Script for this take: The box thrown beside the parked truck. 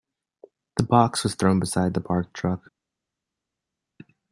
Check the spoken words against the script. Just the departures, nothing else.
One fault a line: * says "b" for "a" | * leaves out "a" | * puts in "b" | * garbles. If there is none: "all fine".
* puts in "was"